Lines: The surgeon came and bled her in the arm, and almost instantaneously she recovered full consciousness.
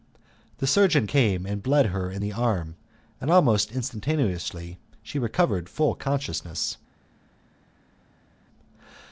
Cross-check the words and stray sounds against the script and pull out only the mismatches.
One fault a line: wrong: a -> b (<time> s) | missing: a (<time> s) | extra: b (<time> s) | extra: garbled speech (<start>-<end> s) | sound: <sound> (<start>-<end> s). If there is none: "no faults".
no faults